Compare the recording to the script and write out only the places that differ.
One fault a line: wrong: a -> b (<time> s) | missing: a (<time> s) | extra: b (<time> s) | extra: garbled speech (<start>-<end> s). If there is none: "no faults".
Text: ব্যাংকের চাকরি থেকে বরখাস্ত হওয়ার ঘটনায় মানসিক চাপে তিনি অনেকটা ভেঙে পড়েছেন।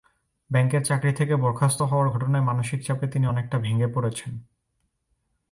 no faults